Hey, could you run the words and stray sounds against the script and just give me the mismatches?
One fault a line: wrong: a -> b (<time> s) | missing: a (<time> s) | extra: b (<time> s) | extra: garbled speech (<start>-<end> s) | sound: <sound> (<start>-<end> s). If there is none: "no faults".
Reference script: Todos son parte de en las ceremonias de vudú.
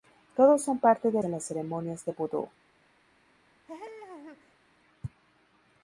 sound: laugh (3.7-4.6 s)